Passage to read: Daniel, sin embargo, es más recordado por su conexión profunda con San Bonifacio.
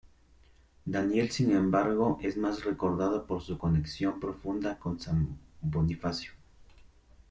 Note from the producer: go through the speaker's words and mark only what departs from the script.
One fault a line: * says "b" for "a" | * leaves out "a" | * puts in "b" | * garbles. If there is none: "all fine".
all fine